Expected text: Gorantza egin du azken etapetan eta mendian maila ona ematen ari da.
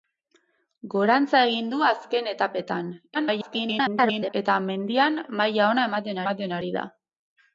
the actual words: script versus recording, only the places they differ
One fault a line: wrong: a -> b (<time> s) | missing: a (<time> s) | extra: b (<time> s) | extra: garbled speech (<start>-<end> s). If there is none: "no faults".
extra: garbled speech (3.1-4.3 s)
extra: ematen (6.2 s)